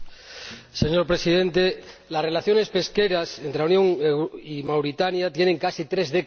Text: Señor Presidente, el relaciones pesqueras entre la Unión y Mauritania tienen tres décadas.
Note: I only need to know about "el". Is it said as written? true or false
false